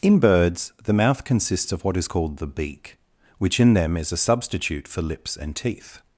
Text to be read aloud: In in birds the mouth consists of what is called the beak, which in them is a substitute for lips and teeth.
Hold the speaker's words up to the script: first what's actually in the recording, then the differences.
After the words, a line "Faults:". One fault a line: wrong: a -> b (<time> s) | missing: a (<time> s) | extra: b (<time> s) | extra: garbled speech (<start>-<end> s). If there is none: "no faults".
In birds the mouth consists of what is called the beak, which in them is a substitute for lips and teeth.
Faults:
missing: in (0.2 s)